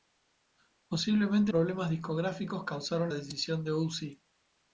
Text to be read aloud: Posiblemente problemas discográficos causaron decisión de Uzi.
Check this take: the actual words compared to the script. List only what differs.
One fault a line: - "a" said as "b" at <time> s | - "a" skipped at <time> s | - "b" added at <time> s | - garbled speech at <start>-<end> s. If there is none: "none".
none